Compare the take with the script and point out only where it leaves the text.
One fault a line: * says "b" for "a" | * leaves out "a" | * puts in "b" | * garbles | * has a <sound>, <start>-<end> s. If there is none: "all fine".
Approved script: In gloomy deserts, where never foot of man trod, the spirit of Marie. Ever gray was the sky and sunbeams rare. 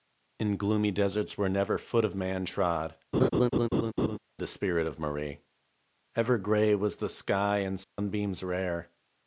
* has a laugh, 3.1-4.2 s
* has a dropout, 7.8-8.0 s